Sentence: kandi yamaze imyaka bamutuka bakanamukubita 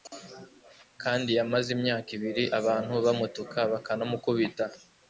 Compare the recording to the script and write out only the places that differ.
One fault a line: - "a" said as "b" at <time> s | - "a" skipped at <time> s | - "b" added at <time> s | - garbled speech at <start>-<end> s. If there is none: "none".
- "ibiri abantu" added at 2.2 s